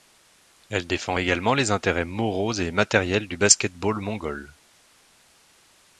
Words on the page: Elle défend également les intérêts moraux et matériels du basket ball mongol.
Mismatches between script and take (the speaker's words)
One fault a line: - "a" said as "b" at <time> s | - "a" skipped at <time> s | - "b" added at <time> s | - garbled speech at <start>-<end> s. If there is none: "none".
none